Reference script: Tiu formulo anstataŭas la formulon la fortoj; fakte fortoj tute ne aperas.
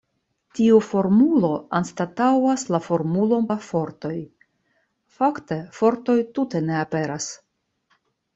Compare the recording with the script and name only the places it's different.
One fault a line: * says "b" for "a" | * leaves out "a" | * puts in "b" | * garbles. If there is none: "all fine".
all fine